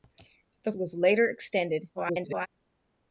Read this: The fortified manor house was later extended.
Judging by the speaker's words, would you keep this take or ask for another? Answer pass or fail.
fail